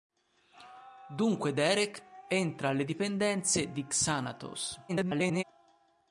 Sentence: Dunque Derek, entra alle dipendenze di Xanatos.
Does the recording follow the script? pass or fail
fail